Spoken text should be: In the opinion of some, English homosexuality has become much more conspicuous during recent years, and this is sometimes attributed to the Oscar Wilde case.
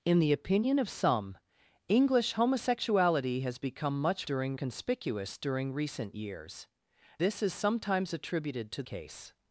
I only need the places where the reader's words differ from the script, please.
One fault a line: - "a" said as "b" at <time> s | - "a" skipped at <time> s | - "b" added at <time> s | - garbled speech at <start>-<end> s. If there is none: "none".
- "more" said as "during" at 4.2 s
- "and" skipped at 6.7 s
- "the Oscar Wilde" skipped at 8.8 s